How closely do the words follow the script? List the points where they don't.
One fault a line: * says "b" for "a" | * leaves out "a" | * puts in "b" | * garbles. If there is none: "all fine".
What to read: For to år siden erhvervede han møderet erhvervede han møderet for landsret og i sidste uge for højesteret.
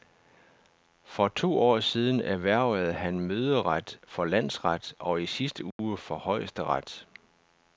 * leaves out "erhvervede han møderet"